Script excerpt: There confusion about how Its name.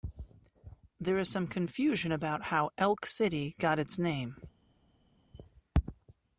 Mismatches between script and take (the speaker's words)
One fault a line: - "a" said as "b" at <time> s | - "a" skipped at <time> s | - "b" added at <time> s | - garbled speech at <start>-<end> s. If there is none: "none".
- "is some" added at 1.2 s
- "Elk City got" added at 2.8 s